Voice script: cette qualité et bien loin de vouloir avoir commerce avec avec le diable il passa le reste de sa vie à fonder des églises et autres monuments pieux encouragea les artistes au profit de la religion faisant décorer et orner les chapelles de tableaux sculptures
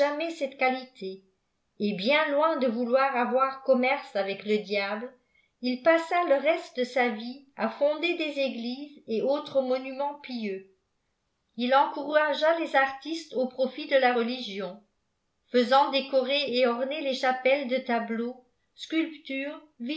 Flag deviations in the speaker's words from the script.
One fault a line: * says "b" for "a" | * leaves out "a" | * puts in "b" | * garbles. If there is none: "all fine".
* leaves out "avec"
* puts in "il"